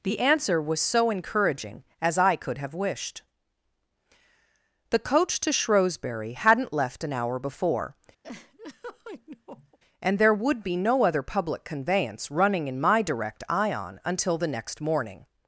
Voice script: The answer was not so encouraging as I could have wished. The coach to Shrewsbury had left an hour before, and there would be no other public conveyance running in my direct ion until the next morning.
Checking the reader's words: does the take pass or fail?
fail